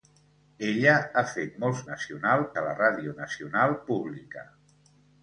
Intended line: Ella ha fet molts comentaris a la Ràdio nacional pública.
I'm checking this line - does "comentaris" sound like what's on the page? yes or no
no